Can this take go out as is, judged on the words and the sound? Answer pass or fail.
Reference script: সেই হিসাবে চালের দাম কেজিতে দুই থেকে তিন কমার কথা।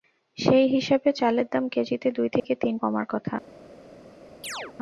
fail